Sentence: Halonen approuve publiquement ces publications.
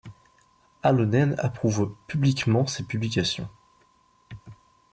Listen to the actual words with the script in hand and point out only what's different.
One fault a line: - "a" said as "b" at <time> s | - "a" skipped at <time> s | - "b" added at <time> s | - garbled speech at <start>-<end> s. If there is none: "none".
none